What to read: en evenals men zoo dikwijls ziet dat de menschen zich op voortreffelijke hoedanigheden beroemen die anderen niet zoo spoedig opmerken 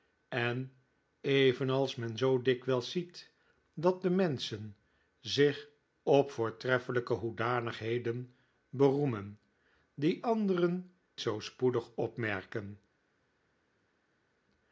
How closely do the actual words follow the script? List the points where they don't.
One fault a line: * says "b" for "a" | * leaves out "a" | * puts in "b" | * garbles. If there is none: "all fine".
* leaves out "niet"